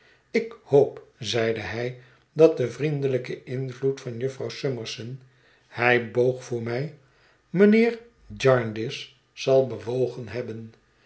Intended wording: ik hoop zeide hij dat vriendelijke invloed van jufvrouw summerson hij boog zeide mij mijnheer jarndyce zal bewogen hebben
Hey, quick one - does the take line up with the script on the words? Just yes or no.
no